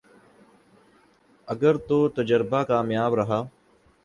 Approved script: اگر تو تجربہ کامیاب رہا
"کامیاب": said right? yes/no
yes